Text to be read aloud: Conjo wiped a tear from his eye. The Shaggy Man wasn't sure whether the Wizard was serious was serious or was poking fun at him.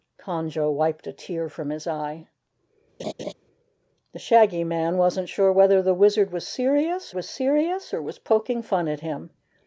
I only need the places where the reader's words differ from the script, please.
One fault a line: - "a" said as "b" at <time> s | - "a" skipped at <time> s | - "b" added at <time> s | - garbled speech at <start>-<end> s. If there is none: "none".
none